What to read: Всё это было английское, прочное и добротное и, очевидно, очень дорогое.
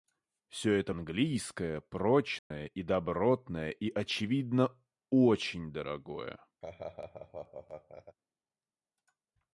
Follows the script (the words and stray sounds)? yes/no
no